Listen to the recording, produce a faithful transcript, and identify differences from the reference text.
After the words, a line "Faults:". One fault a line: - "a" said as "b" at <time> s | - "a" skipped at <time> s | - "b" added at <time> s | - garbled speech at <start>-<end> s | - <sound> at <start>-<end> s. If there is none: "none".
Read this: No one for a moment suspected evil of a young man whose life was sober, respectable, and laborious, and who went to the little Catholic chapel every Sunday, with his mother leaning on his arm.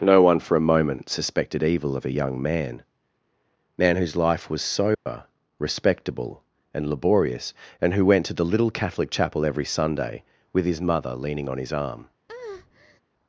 No one for a moment suspected evil of a young man man whose life was sober, respectable, and laborious, and who went to the little Catholic chapel every Sunday, with his mother leaning on his arm.
Faults:
- "man" added at 3.8 s
- dropout at 4.9-5.1 s
- breath at 12.3-13.0 s